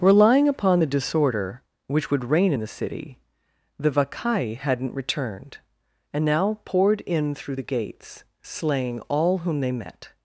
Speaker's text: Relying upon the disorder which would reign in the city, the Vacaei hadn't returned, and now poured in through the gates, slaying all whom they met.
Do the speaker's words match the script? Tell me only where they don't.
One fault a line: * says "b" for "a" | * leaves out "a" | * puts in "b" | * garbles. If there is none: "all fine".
all fine